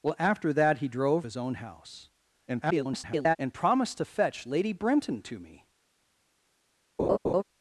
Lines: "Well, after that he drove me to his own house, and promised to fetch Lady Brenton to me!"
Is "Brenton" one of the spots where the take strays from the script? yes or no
no